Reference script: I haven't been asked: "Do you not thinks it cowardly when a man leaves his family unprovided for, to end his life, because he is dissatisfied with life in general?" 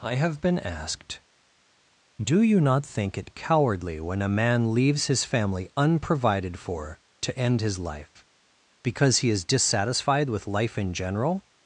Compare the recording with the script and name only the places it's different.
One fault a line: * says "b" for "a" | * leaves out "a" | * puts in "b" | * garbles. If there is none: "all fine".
* says "have" for "haven't"
* says "think" for "thinks"